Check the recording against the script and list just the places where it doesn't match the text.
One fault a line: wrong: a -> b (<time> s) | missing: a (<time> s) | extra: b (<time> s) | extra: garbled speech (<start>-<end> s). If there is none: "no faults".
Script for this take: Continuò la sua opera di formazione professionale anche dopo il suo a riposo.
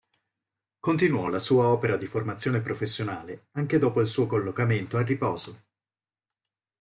extra: collocamento (4.3 s)